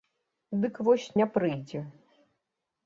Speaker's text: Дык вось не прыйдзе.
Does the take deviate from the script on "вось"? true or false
false